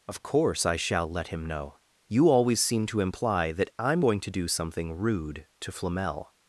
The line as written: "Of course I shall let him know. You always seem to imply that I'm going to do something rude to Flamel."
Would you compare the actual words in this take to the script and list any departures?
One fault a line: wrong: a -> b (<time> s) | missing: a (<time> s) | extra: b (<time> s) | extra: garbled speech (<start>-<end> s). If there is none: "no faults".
no faults